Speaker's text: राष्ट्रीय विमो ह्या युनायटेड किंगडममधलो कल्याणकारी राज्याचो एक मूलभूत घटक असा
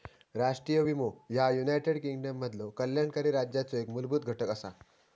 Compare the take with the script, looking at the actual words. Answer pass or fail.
pass